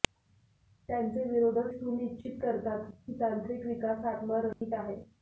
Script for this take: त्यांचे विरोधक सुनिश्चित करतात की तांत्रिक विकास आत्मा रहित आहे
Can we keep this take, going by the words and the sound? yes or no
no